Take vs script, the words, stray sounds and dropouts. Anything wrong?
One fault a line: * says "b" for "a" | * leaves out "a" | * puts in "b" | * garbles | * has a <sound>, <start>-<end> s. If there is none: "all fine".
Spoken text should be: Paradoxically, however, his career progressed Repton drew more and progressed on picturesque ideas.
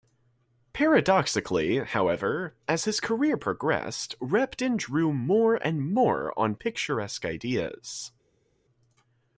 * puts in "as"
* says "more" for "progressed"